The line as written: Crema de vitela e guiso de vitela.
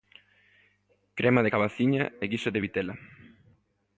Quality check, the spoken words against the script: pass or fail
fail